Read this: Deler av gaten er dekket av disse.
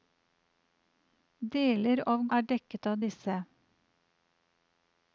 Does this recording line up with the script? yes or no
no